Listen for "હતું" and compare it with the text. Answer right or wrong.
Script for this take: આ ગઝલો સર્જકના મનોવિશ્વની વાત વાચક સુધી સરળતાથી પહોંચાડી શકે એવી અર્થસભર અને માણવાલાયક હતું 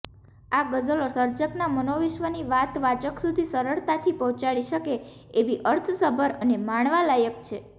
wrong